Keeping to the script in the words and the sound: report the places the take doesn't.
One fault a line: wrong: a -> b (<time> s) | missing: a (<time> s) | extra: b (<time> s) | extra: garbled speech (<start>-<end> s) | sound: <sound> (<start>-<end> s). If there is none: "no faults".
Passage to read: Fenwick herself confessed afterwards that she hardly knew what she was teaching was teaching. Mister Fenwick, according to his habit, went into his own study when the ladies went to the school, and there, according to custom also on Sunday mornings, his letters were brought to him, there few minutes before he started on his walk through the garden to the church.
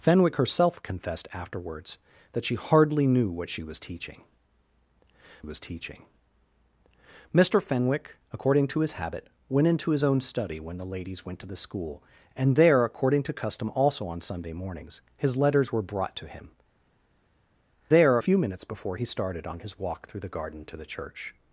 no faults